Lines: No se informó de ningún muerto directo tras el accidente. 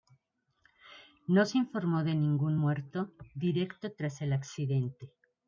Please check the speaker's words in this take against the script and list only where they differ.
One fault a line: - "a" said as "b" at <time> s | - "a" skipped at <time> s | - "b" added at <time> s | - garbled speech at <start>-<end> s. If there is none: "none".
none